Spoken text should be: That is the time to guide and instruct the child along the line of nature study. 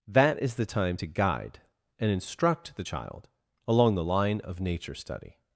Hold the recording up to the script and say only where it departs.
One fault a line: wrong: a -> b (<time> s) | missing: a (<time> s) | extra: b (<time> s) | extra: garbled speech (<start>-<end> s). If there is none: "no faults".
no faults